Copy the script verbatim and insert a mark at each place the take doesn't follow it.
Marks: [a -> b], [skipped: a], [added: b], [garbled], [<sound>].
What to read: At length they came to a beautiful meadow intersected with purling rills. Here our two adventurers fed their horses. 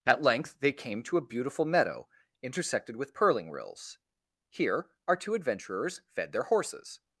At length they came to a beautiful meadow intersected with purling rills. Here our two adventurers fed their horses.